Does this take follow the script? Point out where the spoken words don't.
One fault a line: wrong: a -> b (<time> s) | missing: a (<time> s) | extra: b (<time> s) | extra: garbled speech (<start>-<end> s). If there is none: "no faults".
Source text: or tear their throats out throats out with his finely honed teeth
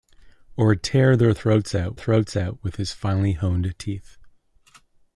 no faults